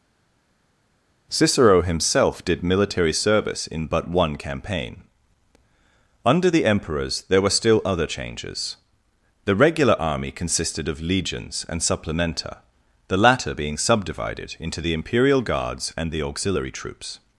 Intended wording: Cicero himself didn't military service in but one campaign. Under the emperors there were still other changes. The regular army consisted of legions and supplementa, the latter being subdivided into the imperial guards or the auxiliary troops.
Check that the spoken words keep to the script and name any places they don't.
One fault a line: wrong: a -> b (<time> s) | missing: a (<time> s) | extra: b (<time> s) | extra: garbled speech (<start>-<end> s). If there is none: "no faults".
wrong: didn't -> did (2.4 s)
wrong: or -> and (16.0 s)